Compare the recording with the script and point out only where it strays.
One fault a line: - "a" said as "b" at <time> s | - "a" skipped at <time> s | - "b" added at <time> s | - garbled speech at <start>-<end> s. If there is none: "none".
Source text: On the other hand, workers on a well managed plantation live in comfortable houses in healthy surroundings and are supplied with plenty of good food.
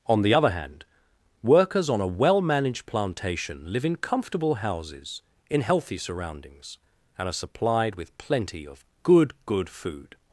- "good" added at 9.4 s